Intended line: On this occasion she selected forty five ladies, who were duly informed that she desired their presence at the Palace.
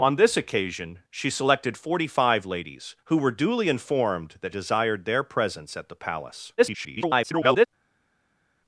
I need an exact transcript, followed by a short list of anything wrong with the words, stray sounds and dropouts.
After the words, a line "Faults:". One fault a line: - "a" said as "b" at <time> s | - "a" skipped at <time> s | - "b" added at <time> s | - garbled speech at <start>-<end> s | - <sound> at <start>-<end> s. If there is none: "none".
On this occasion she selected forty five ladies, who were duly informed that desired their presence at the Palace. [garbled]
Faults:
- "she" skipped at 4.5 s
- garbled speech at 6.6-7.7 s